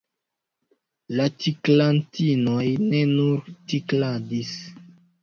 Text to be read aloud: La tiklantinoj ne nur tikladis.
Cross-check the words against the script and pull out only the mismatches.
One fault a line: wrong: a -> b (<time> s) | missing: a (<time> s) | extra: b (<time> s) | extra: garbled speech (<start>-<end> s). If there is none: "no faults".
no faults